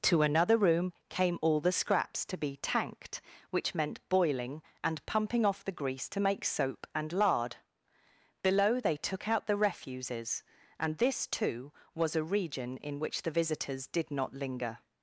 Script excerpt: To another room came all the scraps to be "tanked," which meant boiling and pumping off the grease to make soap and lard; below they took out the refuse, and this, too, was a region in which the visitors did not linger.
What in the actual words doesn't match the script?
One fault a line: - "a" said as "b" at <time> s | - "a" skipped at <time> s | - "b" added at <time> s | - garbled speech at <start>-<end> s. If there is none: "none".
- "refuse" said as "refuses" at 9.6 s